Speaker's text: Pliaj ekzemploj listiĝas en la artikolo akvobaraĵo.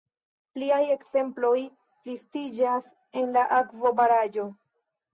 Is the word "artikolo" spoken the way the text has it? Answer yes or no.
no